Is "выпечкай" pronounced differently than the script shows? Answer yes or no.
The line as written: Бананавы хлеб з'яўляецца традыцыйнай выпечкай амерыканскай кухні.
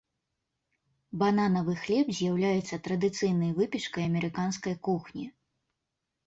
no